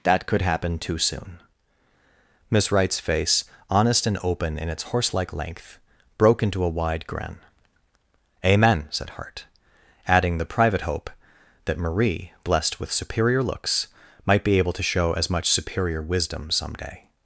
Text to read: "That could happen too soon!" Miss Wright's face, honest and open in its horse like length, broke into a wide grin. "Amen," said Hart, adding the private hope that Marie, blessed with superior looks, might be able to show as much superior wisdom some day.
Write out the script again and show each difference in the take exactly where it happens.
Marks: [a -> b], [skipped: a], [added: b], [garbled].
"That could happen too soon!" Miss Wright's face, honest and open in its horse like length, broke into a wide grin. "Amen," said Hart, adding the private hope that Marie, blessed with superior looks, might be able to show as much superior wisdom some day.